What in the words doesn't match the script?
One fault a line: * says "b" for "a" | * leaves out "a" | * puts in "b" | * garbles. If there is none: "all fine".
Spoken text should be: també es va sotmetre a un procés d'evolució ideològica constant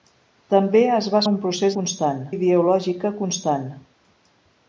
* leaves out "sotmetre"
* says "constant" for "d'evolució"